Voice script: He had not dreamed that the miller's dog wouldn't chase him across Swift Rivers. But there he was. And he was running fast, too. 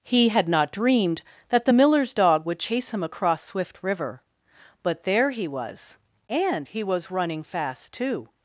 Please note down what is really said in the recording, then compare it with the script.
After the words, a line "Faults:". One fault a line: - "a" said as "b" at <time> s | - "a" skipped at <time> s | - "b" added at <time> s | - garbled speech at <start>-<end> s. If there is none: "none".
He had not dreamed that the miller's dog would chase him across Swift River. But there he was. And he was running fast, too.
Faults:
- "wouldn't" said as "would" at 2.4 s
- "Rivers" said as "River" at 3.8 s